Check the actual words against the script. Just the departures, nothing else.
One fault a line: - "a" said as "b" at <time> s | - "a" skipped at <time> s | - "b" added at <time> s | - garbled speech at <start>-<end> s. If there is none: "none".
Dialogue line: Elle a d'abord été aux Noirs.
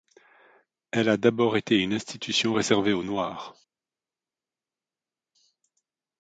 - "une institution réservée" added at 1.8 s